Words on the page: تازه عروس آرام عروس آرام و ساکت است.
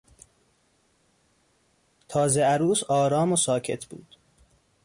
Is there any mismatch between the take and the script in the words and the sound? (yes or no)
yes